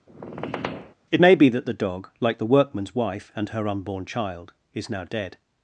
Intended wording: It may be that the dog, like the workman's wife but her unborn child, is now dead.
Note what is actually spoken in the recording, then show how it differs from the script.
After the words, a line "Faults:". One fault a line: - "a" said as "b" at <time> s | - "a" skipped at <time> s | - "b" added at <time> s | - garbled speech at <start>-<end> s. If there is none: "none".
It may be that the dog, like the workman's wife and her unborn child, is now dead.
Faults:
- "but" said as "and" at 3.3 s